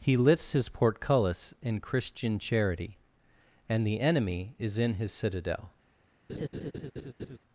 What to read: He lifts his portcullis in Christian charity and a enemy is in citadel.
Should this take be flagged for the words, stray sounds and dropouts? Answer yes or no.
yes